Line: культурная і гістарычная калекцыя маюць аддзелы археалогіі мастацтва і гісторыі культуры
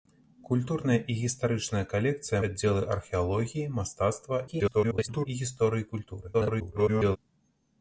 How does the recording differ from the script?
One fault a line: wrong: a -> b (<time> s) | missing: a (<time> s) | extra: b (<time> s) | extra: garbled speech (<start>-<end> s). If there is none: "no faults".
missing: маюць (2.4 s)
extra: garbled speech (4.5-5.3 s)
extra: garbled speech (6.3-7.2 s)